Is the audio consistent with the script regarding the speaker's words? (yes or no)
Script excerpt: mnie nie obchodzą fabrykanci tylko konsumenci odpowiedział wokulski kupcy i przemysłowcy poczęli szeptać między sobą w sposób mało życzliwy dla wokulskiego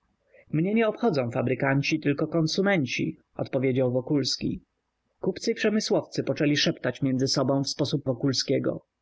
no